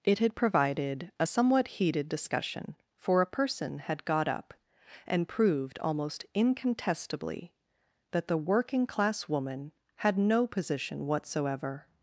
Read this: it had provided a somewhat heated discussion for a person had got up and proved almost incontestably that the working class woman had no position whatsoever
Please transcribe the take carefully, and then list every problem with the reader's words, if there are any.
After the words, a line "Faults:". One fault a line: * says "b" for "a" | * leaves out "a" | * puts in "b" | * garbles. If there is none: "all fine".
it had provided a somewhat heated discussion for a person had got up and proved almost incontestably that the working class woman had no position whatsoever
Faults:
all fine